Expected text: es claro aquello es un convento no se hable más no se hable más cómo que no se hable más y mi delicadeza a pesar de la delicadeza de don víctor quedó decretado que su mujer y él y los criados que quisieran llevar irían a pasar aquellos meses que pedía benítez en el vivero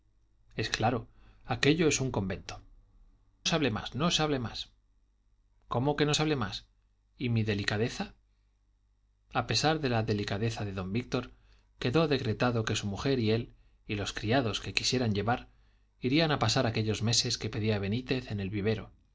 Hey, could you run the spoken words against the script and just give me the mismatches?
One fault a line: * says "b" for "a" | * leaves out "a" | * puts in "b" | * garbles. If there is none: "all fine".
* leaves out "no"